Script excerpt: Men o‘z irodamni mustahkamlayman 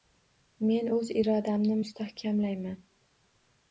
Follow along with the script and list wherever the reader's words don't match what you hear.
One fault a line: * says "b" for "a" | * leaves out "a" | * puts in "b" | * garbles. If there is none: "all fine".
all fine